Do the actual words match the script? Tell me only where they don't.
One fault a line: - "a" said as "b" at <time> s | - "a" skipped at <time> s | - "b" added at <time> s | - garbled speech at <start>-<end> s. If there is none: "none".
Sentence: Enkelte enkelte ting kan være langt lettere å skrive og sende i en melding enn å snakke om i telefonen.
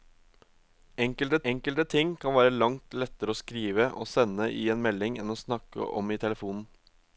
none